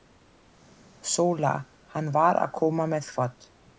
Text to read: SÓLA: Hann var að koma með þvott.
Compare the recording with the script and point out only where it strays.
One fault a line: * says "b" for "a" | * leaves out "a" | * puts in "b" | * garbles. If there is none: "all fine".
all fine